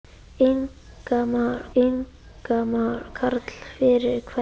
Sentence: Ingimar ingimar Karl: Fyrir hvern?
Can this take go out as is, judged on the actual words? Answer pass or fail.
pass